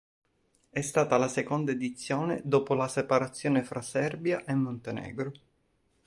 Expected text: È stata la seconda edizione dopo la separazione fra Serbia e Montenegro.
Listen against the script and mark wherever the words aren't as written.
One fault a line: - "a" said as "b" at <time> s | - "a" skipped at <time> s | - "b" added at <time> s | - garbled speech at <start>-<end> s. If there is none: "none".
none